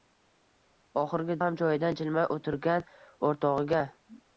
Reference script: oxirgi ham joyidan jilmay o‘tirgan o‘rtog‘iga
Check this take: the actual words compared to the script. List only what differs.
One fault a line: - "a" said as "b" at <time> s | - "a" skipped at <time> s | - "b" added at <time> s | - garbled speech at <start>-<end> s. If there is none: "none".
none